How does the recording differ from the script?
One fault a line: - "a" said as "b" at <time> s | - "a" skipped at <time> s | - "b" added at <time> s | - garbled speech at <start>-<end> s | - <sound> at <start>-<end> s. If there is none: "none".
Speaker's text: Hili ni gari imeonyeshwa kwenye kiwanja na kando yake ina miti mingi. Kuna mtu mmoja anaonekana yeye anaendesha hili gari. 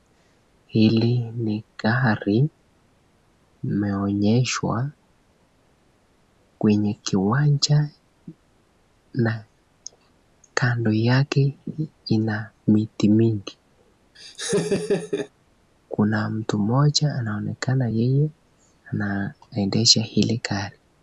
- laugh at 14.2-15.3 s